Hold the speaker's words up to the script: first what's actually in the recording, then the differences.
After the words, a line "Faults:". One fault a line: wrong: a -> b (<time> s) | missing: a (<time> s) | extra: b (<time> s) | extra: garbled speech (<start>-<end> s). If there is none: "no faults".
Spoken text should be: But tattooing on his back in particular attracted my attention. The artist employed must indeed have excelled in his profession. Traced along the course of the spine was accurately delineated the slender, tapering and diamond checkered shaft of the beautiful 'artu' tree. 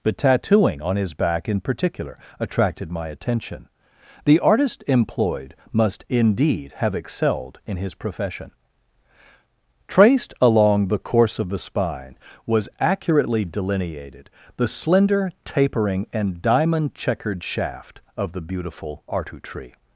But tattooing on his back in particular attracted my attention. The artist employed must indeed have excelled in his profession. Traced along the course of the spine was accurately delineated the slender, tapering and diamond checkered shaft of the beautiful 'artu' tree.
Faults:
no faults